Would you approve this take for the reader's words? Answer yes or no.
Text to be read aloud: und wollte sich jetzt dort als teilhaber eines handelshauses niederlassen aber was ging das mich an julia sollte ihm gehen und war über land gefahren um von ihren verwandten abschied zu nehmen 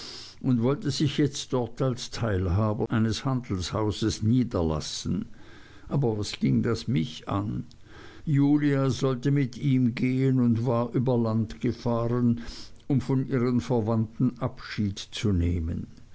no